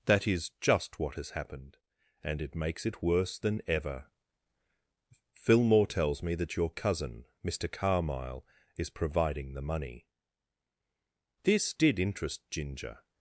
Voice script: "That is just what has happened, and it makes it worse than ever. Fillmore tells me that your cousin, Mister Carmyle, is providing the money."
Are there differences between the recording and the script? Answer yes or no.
yes